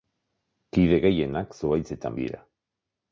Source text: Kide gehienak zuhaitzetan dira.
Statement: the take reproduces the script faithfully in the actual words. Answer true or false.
true